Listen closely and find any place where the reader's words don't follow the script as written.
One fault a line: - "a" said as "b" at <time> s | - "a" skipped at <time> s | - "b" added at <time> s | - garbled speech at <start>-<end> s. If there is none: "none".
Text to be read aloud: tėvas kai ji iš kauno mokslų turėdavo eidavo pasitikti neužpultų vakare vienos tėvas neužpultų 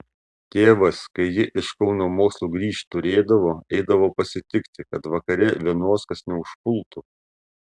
- "grįžt" added at 2.5 s
- "neužpultų" said as "kad" at 4.9 s
- "tėvas" said as "kas" at 6.1 s